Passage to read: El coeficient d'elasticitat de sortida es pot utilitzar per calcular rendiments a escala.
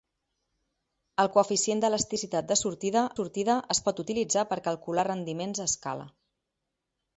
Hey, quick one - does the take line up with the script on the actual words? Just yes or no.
no